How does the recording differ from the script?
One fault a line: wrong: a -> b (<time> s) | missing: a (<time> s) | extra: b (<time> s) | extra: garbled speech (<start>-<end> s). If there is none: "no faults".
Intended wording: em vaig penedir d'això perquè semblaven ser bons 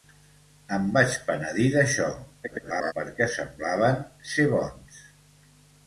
extra: garbled speech (2.4-2.9 s)